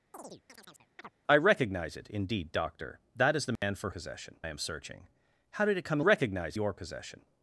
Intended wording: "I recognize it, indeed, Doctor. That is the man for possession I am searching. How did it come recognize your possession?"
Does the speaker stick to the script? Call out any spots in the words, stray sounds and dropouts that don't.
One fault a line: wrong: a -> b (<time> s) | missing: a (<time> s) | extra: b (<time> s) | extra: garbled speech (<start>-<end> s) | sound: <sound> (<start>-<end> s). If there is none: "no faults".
sound: chirp (0.1-1.1 s)
sound: dropout (3.6-3.6 s)